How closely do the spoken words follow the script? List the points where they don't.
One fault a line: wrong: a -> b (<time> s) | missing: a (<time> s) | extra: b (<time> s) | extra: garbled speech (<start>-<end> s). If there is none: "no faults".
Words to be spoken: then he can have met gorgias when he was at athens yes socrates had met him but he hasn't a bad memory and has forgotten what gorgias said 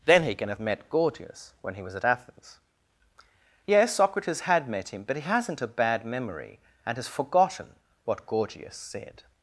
no faults